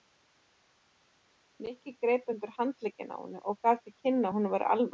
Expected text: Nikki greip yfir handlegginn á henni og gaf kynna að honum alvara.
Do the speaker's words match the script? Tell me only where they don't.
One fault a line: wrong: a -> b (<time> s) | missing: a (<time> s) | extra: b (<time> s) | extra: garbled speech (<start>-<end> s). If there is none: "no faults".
wrong: yfir -> undir (2.3 s)
extra: til (3.8 s)
extra: væri (4.6 s)